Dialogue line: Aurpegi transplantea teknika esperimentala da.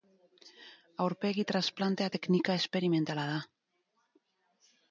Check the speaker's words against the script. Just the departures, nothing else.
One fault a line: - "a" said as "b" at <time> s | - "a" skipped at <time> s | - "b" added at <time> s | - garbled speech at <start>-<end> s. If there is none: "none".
none